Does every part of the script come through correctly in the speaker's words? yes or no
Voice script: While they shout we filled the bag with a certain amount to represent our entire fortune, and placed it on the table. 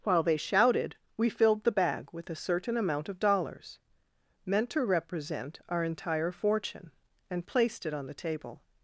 no